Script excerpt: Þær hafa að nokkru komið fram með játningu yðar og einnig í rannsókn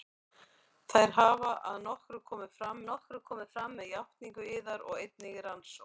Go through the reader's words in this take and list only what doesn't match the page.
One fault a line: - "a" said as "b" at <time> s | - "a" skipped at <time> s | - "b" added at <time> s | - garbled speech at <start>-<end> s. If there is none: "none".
- "nokkru komið fram" added at 2.9 s